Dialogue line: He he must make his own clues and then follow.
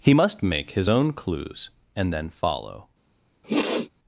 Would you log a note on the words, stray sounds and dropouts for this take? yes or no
yes